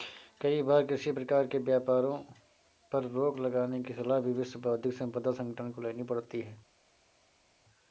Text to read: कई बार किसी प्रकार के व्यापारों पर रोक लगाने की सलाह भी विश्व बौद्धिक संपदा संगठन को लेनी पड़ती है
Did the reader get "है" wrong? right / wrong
right